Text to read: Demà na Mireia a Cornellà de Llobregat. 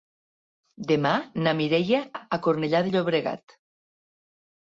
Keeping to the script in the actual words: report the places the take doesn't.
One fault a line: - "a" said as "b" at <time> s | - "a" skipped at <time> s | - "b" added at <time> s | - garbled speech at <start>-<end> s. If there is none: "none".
none